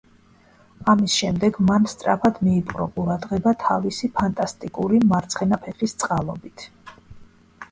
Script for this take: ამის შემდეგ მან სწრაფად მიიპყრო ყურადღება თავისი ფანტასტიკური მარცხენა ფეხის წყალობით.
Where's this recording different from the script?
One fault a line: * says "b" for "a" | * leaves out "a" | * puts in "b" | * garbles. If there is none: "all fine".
all fine